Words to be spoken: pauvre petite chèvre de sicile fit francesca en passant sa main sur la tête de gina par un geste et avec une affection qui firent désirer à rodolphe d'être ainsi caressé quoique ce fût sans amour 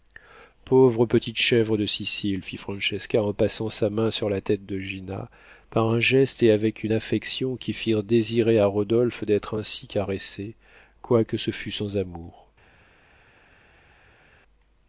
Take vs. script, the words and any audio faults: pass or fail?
pass